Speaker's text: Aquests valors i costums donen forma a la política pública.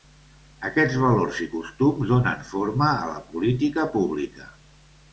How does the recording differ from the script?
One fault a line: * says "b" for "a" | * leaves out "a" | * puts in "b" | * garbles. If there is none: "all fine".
all fine